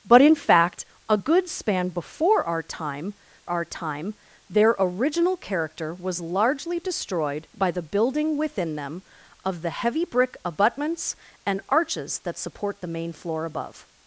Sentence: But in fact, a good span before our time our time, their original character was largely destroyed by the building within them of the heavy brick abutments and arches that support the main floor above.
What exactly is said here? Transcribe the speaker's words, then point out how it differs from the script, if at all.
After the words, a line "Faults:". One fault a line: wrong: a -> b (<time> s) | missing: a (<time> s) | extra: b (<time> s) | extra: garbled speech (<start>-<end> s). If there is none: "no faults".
But in fact, a good span before our time our time, their original character was largely destroyed by the building within them of the heavy brick abutments and arches that support the main floor above.
Faults:
no faults